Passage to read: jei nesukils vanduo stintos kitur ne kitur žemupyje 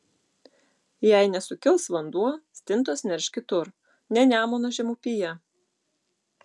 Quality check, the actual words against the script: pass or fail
fail